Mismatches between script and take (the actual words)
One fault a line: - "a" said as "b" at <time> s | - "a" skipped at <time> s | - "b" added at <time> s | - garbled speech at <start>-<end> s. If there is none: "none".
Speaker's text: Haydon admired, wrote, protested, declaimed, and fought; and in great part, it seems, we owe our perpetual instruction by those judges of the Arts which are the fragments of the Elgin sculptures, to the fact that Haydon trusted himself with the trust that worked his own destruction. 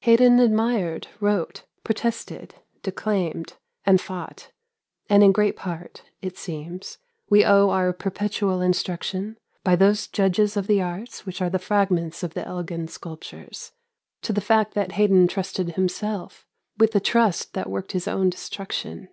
none